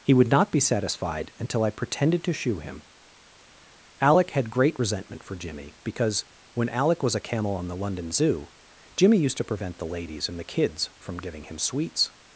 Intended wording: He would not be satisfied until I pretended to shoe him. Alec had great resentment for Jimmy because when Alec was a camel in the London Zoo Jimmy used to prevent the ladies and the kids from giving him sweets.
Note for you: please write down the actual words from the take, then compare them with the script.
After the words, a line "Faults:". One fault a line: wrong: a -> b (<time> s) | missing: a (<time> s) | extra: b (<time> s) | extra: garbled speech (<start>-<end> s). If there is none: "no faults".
He would not be satisfied until I pretended to shoe him. Alec had great resentment for Jimmy because when Alec was a camel on the London Zoo Jimmy used to prevent the ladies and the kids from giving him sweets.
Faults:
wrong: in -> on (7.5 s)